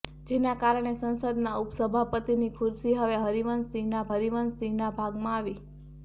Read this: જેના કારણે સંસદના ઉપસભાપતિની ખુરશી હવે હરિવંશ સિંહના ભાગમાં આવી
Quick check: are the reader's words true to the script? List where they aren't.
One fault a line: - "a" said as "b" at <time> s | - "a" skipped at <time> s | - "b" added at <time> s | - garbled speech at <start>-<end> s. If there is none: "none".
- "હરિવંશ સિંહના" added at 4.1 s